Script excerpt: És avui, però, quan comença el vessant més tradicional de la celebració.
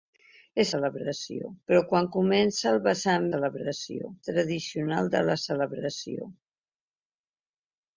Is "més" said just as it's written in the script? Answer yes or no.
no